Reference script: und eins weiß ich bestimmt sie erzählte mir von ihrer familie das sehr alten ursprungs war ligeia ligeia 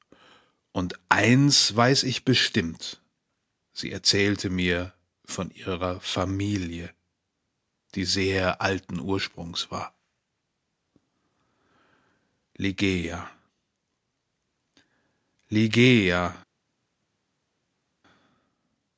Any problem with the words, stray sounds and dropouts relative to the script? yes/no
yes